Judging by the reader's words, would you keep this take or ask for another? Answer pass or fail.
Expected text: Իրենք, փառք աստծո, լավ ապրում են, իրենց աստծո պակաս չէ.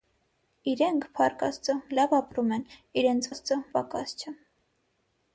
pass